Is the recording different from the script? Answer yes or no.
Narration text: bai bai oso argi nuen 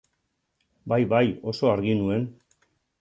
no